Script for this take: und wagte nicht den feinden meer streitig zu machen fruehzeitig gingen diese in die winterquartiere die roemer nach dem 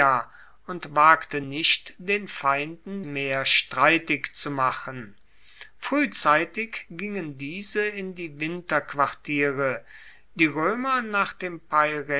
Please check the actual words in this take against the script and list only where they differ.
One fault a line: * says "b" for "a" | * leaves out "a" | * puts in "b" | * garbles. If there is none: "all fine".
all fine